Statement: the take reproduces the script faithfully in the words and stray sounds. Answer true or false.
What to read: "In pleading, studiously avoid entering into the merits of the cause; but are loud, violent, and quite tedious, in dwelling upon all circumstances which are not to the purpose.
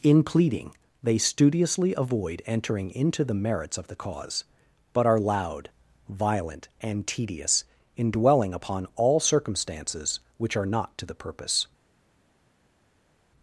false